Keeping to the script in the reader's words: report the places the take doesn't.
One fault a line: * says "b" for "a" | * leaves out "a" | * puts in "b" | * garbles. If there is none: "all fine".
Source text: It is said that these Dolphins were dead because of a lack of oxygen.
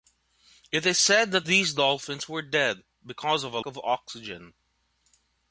* leaves out "lack"